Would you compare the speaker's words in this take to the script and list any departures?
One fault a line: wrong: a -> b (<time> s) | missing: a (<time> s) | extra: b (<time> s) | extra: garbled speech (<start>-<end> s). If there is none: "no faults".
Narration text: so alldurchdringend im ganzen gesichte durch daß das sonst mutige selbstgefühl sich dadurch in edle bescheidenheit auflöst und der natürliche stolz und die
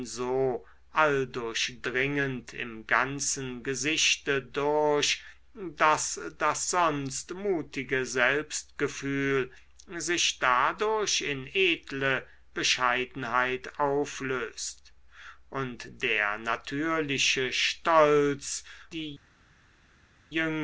missing: und (18.6 s)